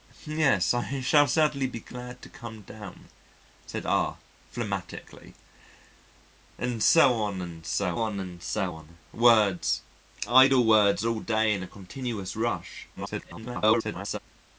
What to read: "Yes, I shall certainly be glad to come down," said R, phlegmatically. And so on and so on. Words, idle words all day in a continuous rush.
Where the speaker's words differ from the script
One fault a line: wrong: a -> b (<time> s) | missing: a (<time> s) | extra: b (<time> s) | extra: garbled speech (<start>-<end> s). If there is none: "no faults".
extra: and so on (8.2 s)
extra: garbled speech (13.0-14.2 s)